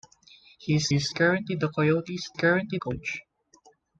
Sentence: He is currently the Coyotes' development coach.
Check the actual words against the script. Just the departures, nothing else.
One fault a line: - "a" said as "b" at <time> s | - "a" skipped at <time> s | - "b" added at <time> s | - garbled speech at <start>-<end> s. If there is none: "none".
- "is" added at 0.9 s
- "development" said as "currently" at 2.3 s